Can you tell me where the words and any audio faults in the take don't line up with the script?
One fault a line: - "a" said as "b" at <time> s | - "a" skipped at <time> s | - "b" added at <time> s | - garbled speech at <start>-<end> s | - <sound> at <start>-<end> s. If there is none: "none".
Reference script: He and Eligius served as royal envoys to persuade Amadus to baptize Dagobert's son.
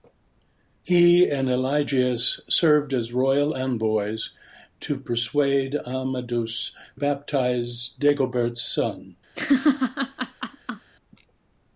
- "to" skipped at 6.7 s
- laugh at 9.3-10.9 s